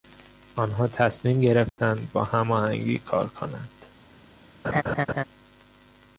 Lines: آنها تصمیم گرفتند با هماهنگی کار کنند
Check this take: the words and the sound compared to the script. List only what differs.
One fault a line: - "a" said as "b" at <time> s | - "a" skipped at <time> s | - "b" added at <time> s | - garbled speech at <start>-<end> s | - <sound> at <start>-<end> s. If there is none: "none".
- dropout at 1.7-1.8 s
- laugh at 4.6-5.2 s